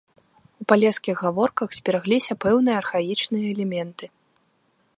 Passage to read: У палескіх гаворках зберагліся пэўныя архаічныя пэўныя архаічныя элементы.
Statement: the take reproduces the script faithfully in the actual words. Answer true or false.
false